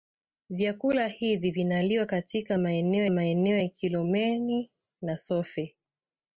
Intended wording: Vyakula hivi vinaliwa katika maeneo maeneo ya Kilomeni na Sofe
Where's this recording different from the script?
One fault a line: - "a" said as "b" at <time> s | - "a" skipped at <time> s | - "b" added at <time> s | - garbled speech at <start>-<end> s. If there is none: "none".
none